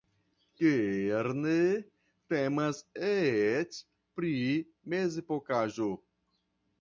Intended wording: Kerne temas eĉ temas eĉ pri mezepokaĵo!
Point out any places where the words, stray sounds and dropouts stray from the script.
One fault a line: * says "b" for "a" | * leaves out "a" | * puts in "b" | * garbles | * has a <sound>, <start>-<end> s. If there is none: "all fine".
* leaves out "temas eĉ"